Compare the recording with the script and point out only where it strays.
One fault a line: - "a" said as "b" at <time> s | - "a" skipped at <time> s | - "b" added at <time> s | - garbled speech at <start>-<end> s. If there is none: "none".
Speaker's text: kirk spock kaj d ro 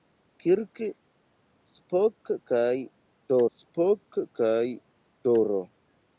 - "spock kaj d" added at 3.6 s